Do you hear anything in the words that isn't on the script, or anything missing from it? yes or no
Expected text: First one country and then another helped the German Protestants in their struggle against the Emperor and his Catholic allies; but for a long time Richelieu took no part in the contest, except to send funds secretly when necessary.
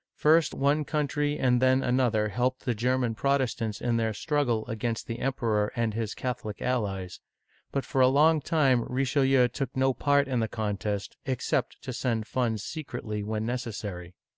no